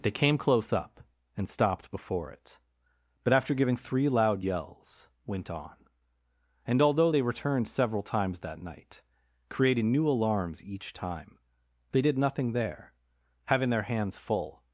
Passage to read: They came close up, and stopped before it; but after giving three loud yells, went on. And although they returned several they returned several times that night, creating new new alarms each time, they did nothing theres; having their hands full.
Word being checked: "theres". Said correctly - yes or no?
no